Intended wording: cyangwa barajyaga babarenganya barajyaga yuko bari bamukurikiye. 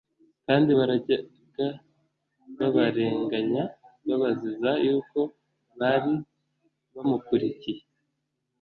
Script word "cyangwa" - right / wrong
wrong